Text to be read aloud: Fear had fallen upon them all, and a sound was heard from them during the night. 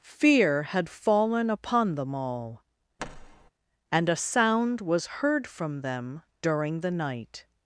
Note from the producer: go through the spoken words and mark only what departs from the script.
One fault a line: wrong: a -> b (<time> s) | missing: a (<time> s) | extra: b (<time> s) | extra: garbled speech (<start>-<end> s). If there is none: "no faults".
no faults